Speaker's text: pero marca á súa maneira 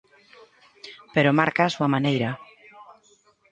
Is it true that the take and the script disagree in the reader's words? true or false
false